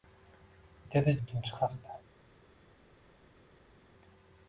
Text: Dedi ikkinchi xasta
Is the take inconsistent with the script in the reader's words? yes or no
no